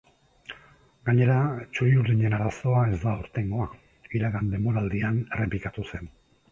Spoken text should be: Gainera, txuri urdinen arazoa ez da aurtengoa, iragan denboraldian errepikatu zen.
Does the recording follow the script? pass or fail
pass